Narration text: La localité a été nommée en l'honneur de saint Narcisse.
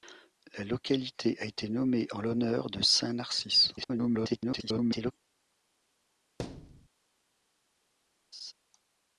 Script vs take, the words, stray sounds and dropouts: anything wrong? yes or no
yes